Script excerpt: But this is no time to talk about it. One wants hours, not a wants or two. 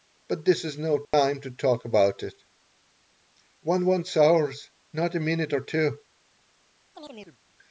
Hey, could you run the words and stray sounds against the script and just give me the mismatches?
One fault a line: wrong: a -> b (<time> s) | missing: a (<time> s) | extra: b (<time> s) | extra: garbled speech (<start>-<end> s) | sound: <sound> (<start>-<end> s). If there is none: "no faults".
sound: dropout (1.0-1.1 s)
wrong: wants -> minute (5.2 s)
sound: chirp (7.0-7.4 s)